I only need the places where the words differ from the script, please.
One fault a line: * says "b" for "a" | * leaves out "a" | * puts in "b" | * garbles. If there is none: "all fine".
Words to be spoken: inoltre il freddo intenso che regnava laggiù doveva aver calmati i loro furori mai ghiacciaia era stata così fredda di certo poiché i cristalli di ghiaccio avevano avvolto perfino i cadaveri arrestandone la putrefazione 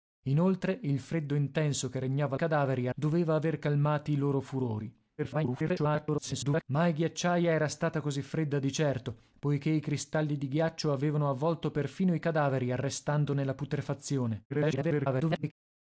* says "cadaveri" for "laggiù"
* garbles
* garbles